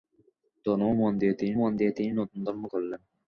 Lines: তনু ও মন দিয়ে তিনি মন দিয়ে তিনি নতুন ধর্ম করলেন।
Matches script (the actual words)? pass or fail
pass